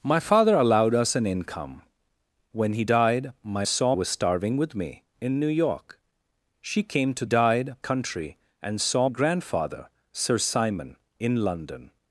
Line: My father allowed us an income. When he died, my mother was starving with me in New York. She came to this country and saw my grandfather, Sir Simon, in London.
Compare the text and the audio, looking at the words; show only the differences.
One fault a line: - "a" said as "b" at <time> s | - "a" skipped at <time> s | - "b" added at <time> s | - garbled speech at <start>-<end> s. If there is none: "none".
- "mother" said as "saw" at 3.7 s
- "this" said as "died" at 7.2 s
- "my" skipped at 9.1 s